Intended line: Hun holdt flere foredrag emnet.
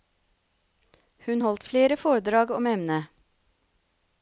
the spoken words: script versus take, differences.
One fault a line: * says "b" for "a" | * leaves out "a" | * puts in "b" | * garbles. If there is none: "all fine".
* puts in "om"